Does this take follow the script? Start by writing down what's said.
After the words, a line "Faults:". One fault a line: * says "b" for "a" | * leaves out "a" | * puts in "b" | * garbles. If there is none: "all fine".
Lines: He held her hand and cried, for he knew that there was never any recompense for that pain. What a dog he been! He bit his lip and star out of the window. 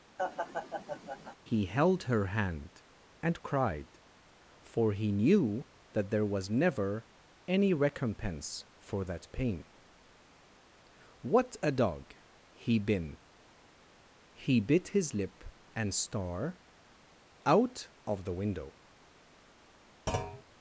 He held her hand and cried, for he knew that there was never any recompense for that pain. What a dog he been! He bit his lip and star out of the window.
Faults:
all fine